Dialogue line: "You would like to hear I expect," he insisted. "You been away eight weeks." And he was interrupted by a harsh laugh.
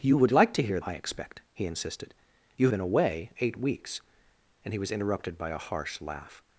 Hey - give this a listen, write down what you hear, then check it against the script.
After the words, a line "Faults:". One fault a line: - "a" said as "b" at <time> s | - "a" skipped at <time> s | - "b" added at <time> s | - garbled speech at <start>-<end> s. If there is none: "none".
"You would like to hear I expect," he insisted. "You been away eight weeks." And he was interrupted by a harsh laugh.
Faults:
none